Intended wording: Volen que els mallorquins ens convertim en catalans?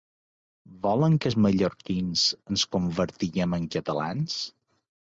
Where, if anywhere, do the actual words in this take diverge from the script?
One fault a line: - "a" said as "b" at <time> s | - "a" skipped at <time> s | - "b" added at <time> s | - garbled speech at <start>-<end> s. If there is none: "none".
none